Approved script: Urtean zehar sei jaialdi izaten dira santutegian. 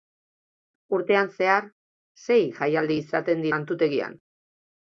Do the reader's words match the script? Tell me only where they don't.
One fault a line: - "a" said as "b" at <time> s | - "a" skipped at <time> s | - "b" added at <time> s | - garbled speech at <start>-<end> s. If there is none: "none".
- "dira" skipped at 3.5 s